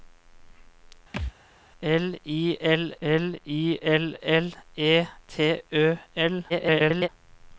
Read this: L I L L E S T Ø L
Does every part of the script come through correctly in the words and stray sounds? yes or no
no